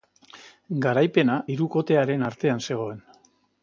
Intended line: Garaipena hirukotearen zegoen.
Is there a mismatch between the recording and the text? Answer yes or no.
yes